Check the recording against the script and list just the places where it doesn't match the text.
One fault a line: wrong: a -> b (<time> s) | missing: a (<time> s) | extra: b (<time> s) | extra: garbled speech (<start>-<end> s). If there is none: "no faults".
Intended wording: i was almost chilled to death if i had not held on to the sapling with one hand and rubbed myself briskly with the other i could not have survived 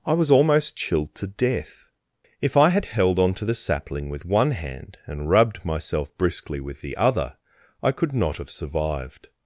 missing: not (2.9 s)